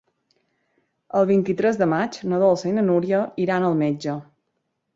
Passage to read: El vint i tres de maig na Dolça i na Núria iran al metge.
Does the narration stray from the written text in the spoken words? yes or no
no